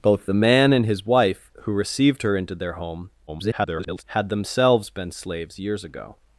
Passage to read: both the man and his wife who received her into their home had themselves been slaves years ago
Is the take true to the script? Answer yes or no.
no